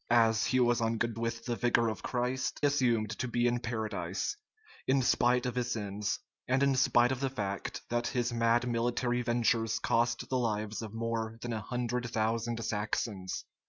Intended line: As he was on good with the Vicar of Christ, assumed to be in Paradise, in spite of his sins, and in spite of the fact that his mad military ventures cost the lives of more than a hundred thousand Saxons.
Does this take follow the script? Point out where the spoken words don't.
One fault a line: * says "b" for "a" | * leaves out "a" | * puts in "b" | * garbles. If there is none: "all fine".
all fine